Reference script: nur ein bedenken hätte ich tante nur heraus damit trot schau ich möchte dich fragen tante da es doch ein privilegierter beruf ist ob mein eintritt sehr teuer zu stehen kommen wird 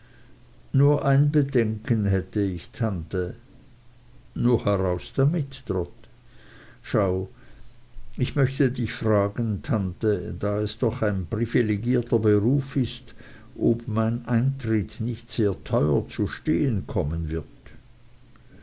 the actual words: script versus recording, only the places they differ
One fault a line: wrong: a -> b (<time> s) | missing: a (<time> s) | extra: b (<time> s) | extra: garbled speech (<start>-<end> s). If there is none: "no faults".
extra: nicht (15.0 s)